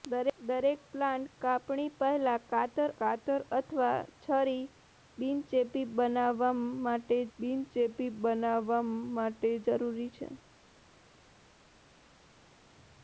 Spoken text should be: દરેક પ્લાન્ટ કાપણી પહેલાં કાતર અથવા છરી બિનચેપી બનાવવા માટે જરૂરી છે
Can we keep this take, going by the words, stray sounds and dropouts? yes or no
no